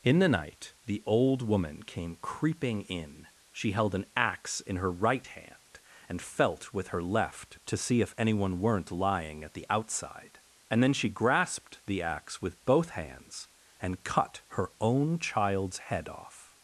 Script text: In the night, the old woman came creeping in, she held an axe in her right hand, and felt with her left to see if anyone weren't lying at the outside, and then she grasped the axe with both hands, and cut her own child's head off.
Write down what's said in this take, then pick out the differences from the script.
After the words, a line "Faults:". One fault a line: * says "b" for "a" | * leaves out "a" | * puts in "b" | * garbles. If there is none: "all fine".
In the night, the old woman came creeping in, she held an axe in her right hand, and felt with her left to see if anyone weren't lying at the outside, and then she grasped the axe with both hands, and cut her own child's head off.
Faults:
all fine